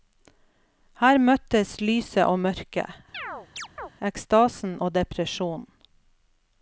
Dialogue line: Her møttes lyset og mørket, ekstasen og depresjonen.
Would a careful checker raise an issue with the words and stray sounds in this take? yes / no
yes